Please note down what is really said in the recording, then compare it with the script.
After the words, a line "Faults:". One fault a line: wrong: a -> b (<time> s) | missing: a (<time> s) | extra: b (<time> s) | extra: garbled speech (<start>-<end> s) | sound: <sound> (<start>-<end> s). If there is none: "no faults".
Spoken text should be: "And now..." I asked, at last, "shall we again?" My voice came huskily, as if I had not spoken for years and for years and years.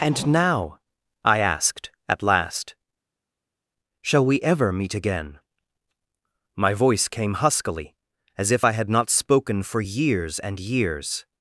"And now..." I asked, at last, "shall we ever meet again?" My voice came huskily, as if I had not spoken for years and years.
Faults:
extra: ever meet (4.4 s)
missing: for years and (10.6 s)